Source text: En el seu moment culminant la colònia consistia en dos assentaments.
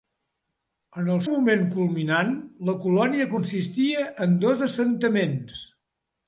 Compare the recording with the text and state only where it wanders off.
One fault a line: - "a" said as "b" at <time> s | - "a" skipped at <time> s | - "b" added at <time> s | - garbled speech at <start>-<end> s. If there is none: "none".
- "seu" skipped at 1.2 s